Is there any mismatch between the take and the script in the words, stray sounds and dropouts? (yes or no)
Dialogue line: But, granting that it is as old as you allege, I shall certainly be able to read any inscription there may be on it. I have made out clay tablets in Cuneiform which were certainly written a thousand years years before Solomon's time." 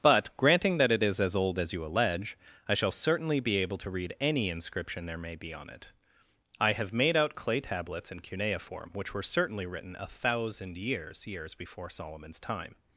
no